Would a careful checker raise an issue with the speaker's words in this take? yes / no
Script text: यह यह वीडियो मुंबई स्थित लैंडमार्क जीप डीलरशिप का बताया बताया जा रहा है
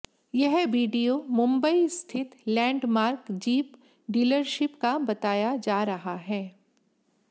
yes